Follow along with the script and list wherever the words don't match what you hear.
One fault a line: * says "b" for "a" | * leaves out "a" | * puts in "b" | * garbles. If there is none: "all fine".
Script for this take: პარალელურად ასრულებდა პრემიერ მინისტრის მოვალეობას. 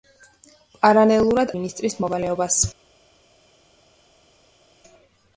* leaves out "ასრულებდა პრემიერ"